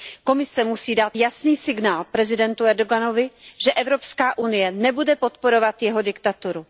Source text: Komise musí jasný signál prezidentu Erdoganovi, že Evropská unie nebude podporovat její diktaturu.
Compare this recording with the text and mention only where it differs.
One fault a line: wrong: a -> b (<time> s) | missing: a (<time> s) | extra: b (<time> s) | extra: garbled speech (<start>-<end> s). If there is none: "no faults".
extra: dát (0.9 s)
wrong: její -> jeho (5.8 s)